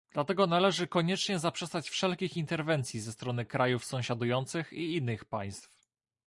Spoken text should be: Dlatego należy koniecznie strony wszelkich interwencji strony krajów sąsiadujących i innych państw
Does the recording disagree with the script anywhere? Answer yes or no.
yes